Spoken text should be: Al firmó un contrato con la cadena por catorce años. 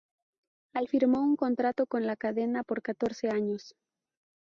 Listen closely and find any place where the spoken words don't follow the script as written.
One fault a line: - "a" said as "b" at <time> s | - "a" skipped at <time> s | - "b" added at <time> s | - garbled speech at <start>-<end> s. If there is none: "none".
none